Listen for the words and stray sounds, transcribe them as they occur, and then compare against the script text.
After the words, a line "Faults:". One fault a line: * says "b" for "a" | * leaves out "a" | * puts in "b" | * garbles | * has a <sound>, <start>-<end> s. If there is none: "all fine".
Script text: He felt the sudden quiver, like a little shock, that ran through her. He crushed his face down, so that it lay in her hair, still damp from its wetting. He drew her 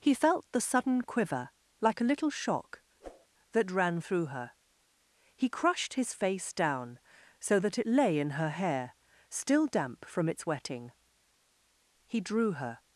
He felt the sudden quiver, like a little shock, that ran through her. He crushed his face down, so that it lay in her hair, still damp from its wetting. He drew her
Faults:
* has a whoosh, 3.0-3.3 s